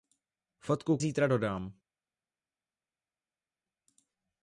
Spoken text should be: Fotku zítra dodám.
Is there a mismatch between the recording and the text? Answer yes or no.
no